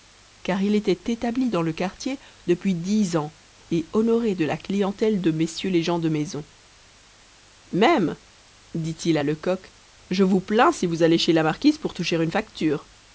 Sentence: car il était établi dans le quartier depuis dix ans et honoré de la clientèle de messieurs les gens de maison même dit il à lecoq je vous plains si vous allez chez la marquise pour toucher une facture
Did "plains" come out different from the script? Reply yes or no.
no